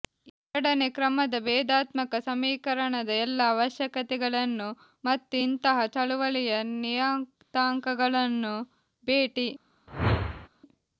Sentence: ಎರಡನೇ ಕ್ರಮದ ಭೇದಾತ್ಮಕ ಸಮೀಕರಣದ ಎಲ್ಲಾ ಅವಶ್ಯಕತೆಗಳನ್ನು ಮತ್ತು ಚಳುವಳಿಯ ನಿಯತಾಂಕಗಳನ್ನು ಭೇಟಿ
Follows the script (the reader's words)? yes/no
no